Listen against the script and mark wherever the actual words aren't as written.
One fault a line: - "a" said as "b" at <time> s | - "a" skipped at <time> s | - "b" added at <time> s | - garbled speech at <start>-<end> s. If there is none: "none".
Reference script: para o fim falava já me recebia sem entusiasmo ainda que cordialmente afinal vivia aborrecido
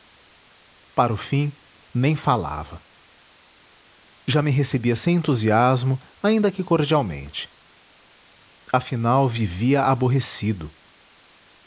- "nem" added at 1.9 s